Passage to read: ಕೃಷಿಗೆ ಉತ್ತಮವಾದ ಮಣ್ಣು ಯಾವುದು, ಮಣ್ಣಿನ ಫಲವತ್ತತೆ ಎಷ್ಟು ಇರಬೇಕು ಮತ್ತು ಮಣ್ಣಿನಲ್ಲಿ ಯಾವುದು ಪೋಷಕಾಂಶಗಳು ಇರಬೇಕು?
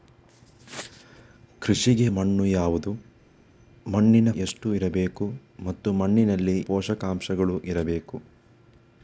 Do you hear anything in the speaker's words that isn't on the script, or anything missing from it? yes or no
yes